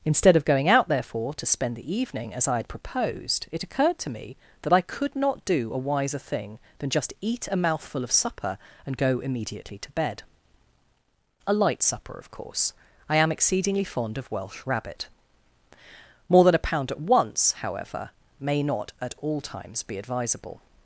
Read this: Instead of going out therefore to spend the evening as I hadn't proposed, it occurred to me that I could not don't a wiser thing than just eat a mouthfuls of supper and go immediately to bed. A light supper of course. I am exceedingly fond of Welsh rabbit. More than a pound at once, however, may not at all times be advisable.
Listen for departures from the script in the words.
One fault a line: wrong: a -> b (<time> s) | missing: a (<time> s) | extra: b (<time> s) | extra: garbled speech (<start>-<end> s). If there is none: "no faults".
wrong: hadn't -> had (2.6 s)
wrong: don't -> do (5.5 s)
wrong: mouthfuls -> mouthful (7.5 s)